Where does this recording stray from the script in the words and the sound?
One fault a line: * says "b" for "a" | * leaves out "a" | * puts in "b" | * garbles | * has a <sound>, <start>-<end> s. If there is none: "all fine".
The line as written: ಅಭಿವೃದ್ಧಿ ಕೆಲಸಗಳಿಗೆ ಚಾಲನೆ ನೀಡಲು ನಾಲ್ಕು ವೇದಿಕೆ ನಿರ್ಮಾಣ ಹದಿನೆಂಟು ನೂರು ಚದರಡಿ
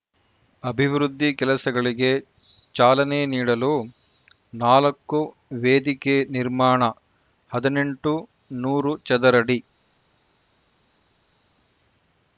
all fine